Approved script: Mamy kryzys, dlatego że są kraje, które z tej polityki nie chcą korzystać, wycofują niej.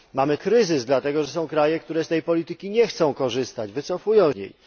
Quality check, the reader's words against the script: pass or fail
pass